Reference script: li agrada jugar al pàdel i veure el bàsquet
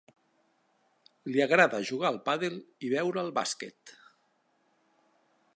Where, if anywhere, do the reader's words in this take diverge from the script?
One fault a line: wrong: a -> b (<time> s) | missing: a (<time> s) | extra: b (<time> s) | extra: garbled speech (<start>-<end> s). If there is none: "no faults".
no faults